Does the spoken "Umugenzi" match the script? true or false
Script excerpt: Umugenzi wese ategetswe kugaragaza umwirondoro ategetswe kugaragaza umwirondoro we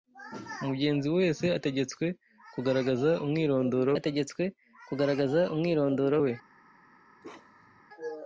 true